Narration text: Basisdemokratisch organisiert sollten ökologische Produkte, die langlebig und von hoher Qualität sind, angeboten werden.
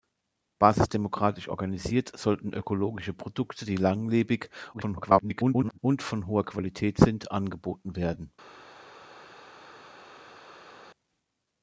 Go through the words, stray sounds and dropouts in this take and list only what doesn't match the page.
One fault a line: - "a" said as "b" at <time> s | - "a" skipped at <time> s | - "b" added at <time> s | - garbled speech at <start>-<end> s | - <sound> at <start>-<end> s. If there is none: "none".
- garbled speech at 4.7-5.8 s